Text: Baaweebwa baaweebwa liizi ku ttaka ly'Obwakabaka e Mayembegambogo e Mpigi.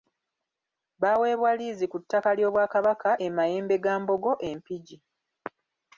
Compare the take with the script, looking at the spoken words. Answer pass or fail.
fail